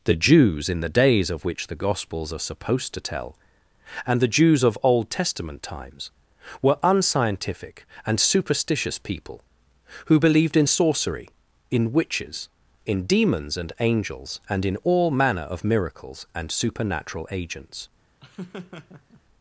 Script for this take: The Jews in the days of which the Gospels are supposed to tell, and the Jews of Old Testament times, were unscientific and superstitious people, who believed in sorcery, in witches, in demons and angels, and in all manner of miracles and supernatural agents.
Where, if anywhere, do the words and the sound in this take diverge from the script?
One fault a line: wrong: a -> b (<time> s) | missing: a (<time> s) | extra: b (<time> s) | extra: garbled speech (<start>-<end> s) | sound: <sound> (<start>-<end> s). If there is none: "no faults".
sound: laugh (18.2-19.2 s)